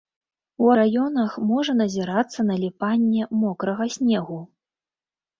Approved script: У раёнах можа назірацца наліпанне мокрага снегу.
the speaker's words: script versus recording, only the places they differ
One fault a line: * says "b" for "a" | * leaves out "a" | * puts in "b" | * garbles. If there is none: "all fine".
all fine